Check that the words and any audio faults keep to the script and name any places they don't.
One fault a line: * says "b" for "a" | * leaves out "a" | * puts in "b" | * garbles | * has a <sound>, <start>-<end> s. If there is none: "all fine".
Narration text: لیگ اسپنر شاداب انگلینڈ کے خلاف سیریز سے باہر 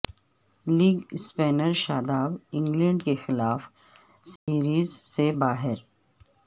* has a dropout, 4.4-4.5 s